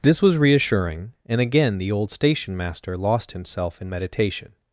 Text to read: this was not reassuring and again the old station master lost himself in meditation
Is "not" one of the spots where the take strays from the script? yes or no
yes